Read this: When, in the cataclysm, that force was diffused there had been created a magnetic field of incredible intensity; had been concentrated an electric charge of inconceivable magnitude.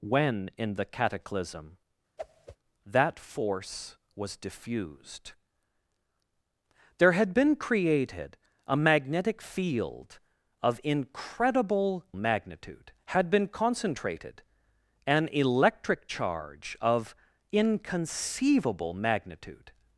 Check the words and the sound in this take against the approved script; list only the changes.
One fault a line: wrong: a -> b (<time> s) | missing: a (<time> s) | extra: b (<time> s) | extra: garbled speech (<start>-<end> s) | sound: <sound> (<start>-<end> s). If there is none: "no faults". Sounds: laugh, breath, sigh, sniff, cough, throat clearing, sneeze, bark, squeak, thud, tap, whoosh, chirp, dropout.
sound: whoosh (2.2-2.6 s)
wrong: intensity -> magnitude (12.1 s)